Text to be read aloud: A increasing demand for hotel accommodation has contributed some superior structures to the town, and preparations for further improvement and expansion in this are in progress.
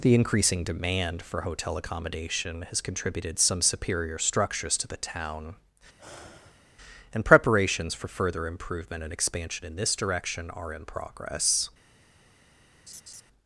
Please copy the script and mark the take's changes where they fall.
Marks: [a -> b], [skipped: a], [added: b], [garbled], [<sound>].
[A -> The] increasing demand for hotel accommodation has contributed some superior structures to the town, [sigh] and preparations for further improvement and expansion in this [added: direction] are in progress. [laugh]